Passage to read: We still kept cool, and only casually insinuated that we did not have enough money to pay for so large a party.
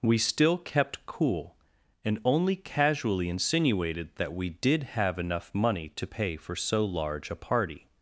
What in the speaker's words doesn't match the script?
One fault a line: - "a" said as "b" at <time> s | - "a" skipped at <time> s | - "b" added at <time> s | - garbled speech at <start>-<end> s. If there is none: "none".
- "not" skipped at 4.8 s